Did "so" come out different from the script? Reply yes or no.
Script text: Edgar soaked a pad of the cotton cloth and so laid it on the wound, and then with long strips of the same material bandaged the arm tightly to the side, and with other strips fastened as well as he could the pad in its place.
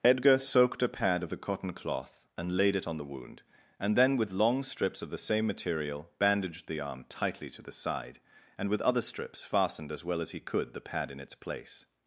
yes